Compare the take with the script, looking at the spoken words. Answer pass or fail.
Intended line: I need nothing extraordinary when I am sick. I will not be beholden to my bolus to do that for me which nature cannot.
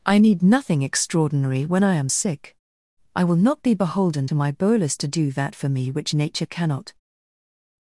pass